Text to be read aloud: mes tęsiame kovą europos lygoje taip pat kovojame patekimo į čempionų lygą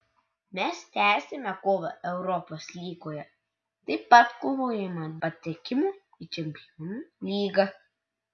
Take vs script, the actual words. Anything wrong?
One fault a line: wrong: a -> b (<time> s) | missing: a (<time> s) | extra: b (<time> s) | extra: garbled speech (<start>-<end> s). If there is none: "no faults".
no faults